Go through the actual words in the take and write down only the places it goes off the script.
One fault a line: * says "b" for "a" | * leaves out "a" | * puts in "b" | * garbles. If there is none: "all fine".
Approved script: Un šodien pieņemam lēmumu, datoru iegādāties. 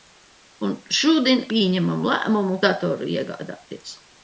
all fine